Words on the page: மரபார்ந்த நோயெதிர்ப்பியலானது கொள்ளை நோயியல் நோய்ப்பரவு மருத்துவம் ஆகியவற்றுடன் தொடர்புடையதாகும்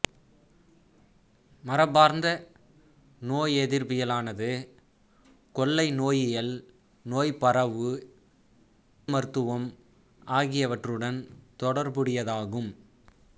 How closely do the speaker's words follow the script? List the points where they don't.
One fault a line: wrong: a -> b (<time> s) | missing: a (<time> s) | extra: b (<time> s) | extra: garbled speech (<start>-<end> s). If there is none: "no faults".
no faults